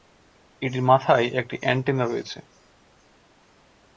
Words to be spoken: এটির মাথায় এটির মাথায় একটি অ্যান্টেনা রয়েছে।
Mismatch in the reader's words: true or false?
true